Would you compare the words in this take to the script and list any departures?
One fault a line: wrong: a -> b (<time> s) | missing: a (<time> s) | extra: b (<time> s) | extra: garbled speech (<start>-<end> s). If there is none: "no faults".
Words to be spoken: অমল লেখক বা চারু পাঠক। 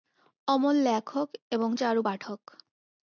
wrong: বা -> এবং (1.5 s)